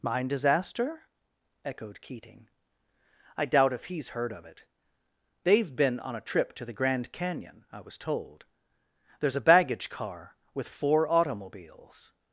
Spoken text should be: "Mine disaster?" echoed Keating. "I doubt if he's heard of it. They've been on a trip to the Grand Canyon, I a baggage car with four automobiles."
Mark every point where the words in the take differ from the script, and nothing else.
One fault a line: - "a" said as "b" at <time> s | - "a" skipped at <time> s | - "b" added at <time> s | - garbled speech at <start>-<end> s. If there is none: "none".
- "was told there's" added at 7.8 s